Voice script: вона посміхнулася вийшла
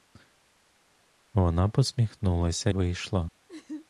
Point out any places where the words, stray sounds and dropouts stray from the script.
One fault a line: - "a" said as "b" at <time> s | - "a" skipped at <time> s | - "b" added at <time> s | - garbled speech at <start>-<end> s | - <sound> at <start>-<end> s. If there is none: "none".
- laugh at 3.5-3.9 s